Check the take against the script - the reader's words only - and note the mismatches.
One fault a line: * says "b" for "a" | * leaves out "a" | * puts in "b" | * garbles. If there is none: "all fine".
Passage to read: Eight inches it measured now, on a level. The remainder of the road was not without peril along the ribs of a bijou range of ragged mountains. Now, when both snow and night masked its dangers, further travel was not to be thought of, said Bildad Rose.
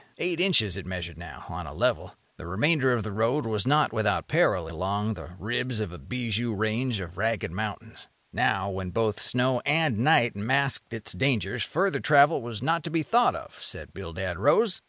all fine